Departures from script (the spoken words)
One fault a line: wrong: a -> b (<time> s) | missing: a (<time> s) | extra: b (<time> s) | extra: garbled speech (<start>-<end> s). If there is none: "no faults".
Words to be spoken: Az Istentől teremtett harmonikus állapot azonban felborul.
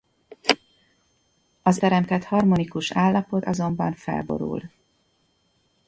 missing: Istentől (1.8 s)